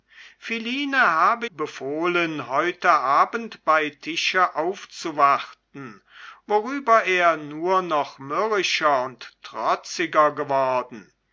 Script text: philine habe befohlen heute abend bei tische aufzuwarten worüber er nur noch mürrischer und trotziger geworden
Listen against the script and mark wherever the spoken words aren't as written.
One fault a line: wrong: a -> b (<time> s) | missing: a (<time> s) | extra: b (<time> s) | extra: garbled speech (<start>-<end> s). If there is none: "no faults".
no faults